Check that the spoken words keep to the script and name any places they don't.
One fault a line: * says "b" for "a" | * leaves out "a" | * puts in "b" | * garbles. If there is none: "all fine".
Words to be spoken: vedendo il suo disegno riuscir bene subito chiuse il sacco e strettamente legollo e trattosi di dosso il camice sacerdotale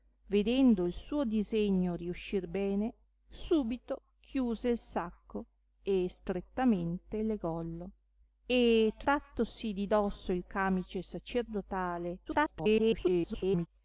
* garbles